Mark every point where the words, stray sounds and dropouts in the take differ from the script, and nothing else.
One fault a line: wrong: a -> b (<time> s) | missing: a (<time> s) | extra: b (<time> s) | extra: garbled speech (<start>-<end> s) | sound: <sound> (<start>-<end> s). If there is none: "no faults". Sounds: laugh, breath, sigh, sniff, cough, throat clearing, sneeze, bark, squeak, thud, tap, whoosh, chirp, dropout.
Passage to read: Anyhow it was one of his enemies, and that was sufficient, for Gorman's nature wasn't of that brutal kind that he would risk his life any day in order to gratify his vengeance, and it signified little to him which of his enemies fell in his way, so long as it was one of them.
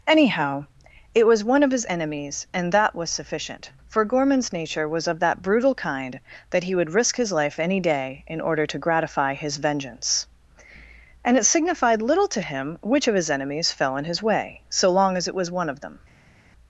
wrong: wasn't -> was (4.9 s)